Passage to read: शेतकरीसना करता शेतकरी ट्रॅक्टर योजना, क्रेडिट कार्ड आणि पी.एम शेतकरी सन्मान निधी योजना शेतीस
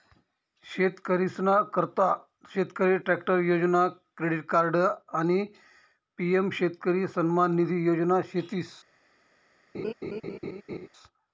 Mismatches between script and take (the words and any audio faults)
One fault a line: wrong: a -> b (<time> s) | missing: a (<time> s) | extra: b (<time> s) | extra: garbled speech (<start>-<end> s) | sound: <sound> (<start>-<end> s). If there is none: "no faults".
sound: laugh (9.7-10.9 s)